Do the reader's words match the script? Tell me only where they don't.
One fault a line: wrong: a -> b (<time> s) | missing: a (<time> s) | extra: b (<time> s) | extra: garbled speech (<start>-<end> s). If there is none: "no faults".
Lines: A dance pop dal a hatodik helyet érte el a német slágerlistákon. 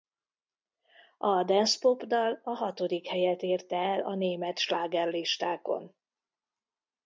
no faults